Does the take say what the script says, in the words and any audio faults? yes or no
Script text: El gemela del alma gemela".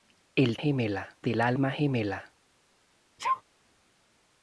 no